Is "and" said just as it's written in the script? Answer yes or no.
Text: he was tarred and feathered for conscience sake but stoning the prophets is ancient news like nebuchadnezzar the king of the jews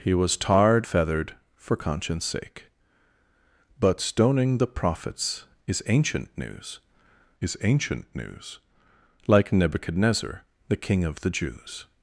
no